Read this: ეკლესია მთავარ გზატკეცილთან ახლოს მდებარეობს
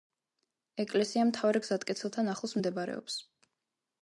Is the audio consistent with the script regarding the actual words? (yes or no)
yes